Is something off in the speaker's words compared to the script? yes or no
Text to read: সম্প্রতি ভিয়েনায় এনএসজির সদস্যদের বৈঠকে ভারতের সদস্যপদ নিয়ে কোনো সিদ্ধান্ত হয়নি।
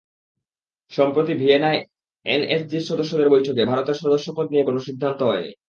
no